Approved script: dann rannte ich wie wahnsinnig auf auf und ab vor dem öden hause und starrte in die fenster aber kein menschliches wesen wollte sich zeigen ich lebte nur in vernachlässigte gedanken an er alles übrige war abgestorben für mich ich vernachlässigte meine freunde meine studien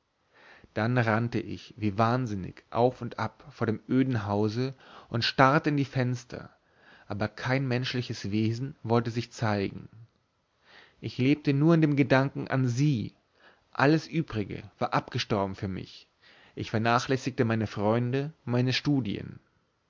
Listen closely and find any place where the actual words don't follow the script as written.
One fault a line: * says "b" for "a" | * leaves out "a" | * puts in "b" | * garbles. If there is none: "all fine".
* leaves out "auf"
* says "dem" for "vernachlässigte"
* says "sie" for "er"